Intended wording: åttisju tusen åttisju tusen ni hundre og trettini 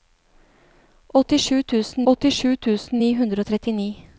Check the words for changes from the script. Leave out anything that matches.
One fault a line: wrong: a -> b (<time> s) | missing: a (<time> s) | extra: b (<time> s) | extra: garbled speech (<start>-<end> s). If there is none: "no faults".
no faults